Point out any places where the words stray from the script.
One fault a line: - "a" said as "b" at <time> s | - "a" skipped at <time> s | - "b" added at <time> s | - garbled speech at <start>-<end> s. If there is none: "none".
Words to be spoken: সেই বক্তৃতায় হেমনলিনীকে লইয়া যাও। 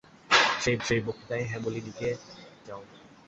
- "সেই" added at 0.8 s
- "লইয়া" skipped at 2.1 s